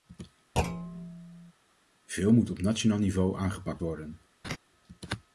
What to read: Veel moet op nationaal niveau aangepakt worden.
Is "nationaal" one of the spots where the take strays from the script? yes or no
no